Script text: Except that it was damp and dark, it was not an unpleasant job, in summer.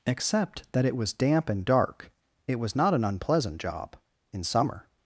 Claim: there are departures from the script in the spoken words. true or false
false